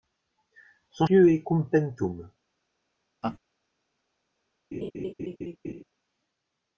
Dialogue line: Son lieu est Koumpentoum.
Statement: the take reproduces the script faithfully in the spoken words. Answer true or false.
true